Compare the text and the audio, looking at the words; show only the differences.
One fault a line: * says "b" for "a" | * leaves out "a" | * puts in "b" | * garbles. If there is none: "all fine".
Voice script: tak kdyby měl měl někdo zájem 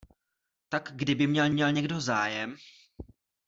all fine